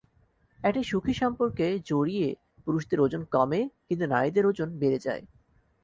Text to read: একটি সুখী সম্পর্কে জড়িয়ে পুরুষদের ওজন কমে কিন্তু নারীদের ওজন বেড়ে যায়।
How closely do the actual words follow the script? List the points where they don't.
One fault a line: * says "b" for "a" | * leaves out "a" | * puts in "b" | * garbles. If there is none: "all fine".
all fine